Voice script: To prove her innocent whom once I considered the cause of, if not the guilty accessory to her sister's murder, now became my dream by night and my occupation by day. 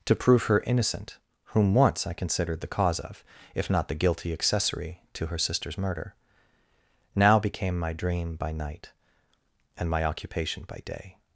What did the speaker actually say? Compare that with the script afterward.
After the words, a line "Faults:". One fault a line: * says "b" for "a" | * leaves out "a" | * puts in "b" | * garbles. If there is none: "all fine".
To prove her innocent whom once I considered the cause of, if not the guilty accessory to her sister's murder, now became my dream by night and my occupation by day.
Faults:
all fine